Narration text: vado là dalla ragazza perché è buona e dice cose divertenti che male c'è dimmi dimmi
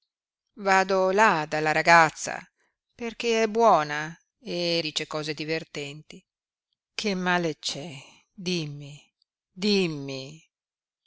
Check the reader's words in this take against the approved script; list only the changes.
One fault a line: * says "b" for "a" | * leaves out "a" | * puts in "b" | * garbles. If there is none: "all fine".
all fine